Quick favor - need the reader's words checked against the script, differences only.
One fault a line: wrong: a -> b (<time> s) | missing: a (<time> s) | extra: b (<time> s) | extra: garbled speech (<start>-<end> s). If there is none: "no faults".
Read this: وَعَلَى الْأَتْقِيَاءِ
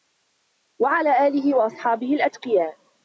extra: آلِهِ وَأَصْحَابِهِ (1.3 s)